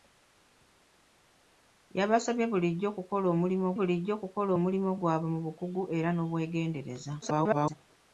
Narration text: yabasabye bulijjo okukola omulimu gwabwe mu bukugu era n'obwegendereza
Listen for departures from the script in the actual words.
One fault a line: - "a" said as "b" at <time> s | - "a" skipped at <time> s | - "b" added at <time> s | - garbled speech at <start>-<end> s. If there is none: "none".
- "bulijjo okukola omulimu" added at 3.8 s
- garbled speech at 7.2-7.8 s